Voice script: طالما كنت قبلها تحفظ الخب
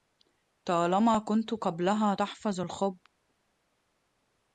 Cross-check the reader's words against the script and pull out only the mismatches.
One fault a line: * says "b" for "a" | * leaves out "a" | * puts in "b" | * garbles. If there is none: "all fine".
all fine